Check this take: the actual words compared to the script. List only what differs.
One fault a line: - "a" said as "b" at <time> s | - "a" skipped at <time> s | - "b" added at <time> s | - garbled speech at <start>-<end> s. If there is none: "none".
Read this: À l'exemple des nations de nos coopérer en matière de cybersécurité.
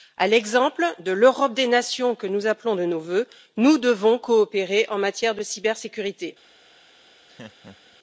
- "de l'Europe" added at 1.0 s
- "que nous appelons" added at 2.1 s
- "vœux nous devons" added at 3.0 s